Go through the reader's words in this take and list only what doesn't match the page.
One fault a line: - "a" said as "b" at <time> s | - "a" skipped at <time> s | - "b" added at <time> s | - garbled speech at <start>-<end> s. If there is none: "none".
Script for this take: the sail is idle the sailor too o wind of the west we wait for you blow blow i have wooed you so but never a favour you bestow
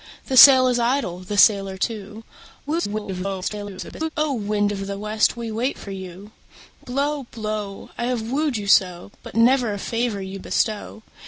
- garbled speech at 2.7-4.1 s